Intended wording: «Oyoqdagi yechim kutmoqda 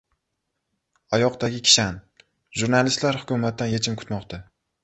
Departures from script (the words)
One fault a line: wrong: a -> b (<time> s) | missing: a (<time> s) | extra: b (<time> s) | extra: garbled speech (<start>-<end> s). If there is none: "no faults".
extra: kishan Jurnalistlar hukumatdan (1.7 s)